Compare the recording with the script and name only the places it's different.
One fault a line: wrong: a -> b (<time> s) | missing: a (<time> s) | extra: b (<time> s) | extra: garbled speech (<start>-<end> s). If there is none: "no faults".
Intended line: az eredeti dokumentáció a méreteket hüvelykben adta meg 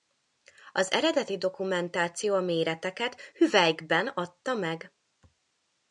no faults